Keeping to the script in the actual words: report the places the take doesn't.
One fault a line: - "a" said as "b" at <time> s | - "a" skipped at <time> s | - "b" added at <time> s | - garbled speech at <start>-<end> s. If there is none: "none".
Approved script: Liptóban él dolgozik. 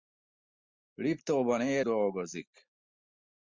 none